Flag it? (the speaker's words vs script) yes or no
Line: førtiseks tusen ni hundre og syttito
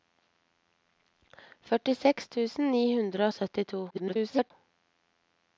yes